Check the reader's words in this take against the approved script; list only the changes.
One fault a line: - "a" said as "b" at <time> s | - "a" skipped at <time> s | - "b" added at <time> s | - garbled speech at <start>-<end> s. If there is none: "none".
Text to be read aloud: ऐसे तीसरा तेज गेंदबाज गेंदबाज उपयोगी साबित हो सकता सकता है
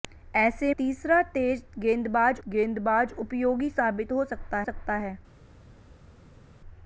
none